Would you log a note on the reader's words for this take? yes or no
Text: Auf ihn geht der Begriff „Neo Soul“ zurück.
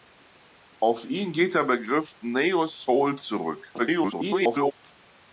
yes